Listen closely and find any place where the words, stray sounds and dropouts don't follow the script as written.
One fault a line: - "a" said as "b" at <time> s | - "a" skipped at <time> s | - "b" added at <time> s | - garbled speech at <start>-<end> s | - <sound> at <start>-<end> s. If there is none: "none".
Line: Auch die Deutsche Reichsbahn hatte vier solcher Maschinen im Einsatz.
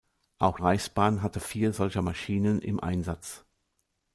- "die Deutsche" skipped at 0.6 s